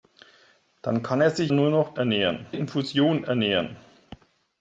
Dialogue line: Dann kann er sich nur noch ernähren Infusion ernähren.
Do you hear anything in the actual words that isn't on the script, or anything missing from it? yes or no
no